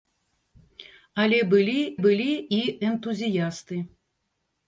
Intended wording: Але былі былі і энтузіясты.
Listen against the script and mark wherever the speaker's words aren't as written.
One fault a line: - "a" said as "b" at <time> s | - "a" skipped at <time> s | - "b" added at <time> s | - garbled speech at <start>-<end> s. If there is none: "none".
none